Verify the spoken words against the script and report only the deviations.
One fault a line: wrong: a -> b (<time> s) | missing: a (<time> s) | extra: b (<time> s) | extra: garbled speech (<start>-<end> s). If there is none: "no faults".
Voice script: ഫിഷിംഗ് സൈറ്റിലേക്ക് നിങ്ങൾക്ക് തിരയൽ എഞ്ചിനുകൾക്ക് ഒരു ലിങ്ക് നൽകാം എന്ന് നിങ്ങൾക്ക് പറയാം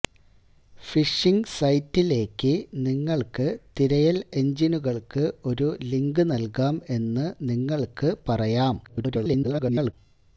extra: garbled speech (8.8-9.9 s)